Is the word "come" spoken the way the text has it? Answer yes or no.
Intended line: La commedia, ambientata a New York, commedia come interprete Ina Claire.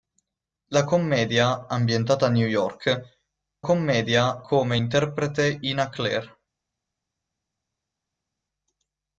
yes